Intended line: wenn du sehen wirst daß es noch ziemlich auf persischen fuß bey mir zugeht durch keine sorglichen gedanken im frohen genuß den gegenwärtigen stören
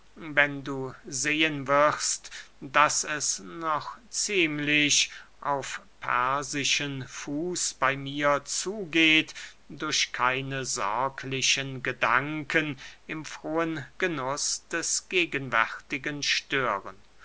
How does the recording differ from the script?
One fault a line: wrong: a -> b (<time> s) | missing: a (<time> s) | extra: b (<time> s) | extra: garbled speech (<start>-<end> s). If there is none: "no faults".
wrong: den -> des (14.7 s)